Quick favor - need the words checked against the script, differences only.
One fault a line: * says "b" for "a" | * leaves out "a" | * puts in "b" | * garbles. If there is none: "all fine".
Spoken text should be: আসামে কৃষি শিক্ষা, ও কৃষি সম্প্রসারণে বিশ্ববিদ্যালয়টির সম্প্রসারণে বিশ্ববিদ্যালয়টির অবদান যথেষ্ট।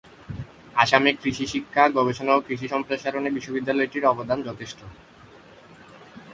* puts in "গবেষণা"
* leaves out "সম্প্রসারণে বিশ্ববিদ্যালয়টির"